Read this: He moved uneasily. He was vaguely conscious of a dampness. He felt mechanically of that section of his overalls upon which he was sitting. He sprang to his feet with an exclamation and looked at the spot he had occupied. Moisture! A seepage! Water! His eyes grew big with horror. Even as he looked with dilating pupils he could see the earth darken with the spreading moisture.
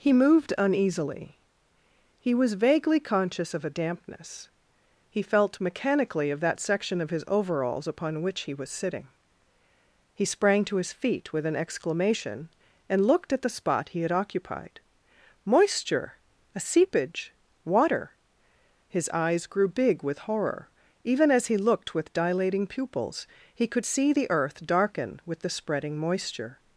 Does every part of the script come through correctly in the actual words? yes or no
yes